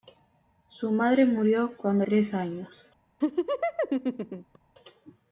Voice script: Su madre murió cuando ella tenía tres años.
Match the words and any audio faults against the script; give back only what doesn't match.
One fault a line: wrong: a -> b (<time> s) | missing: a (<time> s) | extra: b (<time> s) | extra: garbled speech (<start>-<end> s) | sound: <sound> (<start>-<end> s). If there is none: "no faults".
missing: ella tenía (2.0 s)
sound: laugh (3.2-4.6 s)